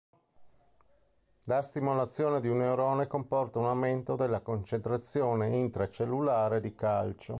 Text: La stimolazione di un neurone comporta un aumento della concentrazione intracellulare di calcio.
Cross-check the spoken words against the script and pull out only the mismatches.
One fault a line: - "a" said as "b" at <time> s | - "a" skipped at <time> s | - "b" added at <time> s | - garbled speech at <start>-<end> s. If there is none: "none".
none